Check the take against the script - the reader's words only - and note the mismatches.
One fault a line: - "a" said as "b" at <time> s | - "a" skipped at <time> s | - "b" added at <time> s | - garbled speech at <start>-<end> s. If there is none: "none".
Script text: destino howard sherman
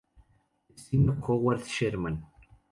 none